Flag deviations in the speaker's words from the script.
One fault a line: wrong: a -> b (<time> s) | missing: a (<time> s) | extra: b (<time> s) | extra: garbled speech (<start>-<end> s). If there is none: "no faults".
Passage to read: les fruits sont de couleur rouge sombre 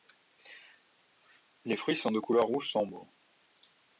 no faults